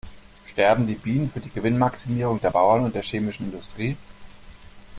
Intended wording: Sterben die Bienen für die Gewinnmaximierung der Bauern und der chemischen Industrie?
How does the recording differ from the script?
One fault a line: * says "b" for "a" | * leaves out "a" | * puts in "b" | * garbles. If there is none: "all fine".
all fine